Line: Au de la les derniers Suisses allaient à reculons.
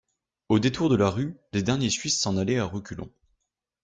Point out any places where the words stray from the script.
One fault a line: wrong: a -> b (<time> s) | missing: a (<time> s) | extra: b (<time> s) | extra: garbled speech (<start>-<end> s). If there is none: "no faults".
extra: détour (0.6 s)
extra: rue (1.1 s)
extra: s'en (2.2 s)